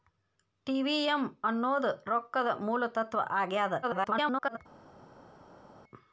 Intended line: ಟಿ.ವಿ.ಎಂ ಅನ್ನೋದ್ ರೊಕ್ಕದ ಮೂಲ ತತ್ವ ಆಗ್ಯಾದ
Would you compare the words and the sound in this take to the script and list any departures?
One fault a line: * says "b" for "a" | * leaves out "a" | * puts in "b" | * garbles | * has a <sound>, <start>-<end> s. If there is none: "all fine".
* garbles